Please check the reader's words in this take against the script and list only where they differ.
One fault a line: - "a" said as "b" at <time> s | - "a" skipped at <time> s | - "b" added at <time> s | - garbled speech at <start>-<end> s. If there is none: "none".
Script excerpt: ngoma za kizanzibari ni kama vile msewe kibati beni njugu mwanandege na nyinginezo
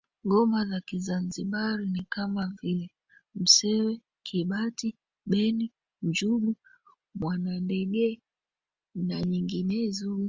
none